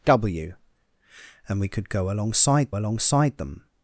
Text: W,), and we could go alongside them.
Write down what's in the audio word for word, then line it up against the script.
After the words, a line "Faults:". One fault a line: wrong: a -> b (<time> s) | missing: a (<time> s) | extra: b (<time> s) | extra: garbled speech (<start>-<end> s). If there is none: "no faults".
W,), and we could go alongside alongside them.
Faults:
extra: alongside (2.7 s)